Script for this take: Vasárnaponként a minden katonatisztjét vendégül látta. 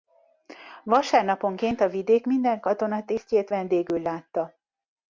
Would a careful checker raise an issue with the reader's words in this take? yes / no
yes